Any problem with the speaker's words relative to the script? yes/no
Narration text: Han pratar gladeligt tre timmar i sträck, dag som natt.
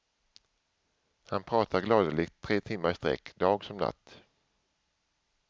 no